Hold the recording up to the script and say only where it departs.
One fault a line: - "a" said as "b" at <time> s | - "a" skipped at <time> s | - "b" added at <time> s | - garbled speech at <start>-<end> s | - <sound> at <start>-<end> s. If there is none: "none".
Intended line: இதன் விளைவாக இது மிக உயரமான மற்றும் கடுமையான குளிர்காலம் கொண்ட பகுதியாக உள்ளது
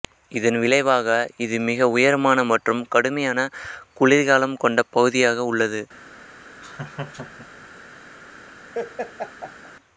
- laugh at 6.6-7.7 s
- laugh at 8.7-9.7 s